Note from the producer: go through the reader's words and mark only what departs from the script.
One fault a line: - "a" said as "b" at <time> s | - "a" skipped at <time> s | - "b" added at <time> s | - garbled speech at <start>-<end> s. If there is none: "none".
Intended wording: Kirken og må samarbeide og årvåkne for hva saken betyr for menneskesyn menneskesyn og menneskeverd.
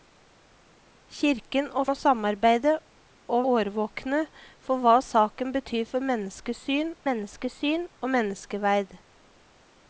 none